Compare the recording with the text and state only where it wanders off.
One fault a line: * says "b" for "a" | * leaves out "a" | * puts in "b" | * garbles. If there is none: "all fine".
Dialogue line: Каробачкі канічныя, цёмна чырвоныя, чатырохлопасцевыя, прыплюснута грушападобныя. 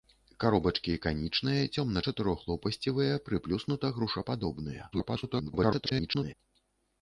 * leaves out "чырвоныя"
* garbles